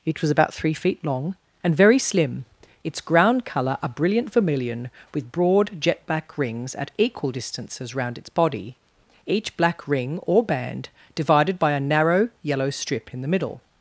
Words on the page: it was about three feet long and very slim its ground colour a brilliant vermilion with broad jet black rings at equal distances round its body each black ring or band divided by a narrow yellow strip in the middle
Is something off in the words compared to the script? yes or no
no